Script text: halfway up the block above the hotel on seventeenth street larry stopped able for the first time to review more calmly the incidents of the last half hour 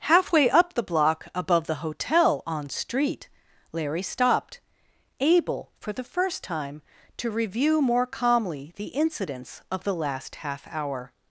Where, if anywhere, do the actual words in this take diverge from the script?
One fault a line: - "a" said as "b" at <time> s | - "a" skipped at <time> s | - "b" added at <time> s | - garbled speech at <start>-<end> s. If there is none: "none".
- "seventeenth" skipped at 2.7 s